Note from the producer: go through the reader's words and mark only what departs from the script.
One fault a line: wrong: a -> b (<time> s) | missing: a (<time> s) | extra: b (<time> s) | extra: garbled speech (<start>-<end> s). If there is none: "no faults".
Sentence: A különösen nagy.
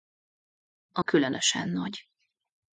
no faults